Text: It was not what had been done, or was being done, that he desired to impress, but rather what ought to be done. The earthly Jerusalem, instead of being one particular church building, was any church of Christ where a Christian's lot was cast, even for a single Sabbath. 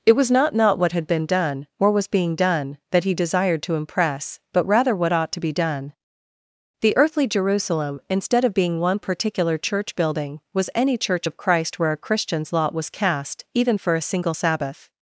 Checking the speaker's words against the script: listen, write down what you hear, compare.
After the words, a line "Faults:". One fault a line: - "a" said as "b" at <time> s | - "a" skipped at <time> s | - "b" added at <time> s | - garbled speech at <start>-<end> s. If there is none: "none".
It was not not what had been done, or was being done, that he desired to impress, but rather what ought to be done. The earthly Jerusalem, instead of being one particular church building, was any church of Christ where a Christian's lot was cast, even for a single Sabbath.
Faults:
- "not" added at 0.6 s